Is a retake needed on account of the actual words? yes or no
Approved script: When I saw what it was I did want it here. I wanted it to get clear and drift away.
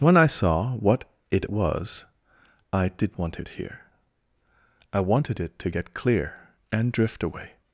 no